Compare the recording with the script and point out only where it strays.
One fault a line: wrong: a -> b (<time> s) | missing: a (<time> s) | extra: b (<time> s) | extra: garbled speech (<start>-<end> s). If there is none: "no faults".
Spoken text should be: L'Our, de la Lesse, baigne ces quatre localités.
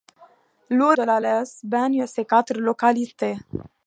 no faults